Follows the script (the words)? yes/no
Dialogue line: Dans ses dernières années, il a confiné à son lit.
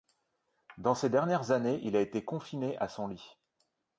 no